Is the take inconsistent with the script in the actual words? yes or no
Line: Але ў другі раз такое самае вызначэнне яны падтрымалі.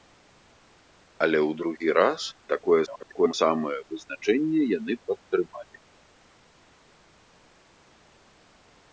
yes